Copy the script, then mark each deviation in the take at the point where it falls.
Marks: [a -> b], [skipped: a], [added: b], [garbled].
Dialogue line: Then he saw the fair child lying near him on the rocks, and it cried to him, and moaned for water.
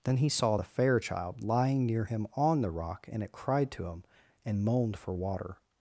Then he saw the fair child lying near him on the [rocks, -> rock] and it cried to him, and moaned for water.